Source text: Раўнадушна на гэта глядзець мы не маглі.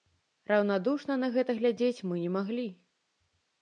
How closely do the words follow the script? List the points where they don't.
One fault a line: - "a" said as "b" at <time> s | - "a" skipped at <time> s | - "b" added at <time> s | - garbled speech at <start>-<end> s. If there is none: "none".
none